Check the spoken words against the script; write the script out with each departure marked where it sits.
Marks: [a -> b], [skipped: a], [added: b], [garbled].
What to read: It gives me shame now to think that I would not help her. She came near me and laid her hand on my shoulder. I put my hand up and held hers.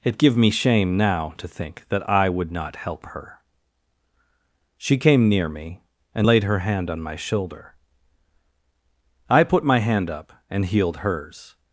It [gives -> give] me shame now to think that I would not help her. She came near me and laid her hand on my shoulder. I put my hand up and [held -> healed] hers.